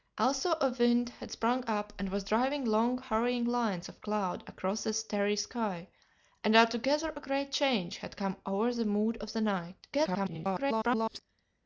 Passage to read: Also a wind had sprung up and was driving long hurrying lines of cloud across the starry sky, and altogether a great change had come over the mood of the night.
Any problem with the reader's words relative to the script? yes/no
yes